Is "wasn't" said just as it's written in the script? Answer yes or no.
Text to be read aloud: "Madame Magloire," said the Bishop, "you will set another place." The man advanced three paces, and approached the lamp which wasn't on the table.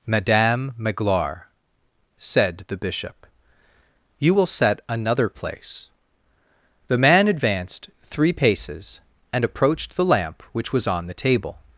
no